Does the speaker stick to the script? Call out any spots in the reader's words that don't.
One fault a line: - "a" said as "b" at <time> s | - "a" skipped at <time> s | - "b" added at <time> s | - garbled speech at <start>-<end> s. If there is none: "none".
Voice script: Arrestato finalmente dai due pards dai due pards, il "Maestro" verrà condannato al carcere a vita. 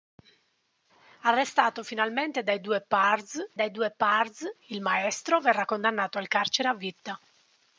none